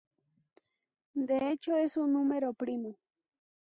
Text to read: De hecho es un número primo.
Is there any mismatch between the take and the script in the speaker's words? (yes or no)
no